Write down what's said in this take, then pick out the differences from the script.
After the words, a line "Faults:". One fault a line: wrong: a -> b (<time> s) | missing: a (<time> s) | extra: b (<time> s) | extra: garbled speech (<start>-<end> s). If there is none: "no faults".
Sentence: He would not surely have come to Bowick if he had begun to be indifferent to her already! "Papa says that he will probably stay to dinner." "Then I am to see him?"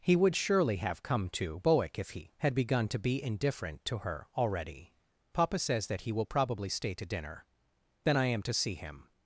He would surely have come to Bowick if he had begun to be indifferent to her already! "Papa says that he will probably stay to dinner." "Then I am to see him?"
Faults:
missing: not (0.3 s)